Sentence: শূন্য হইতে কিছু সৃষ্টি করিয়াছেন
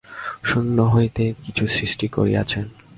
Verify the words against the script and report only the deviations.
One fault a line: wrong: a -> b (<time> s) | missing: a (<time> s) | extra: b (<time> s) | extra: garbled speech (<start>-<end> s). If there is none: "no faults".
no faults